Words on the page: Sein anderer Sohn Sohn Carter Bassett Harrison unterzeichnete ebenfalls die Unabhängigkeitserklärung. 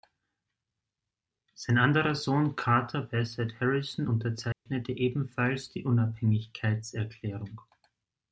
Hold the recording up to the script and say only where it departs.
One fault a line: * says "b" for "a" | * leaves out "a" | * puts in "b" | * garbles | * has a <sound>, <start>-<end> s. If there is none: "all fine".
* leaves out "Sohn"
* has a dropout, 4.5-4.7 s